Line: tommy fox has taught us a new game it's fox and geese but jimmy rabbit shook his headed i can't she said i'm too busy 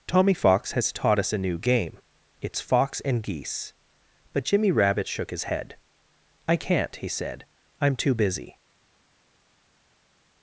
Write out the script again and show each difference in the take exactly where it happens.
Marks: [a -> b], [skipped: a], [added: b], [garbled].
tommy fox has taught us a new game it's fox and geese but jimmy rabbit shook his [headed -> head] i can't [she -> he] said i'm too busy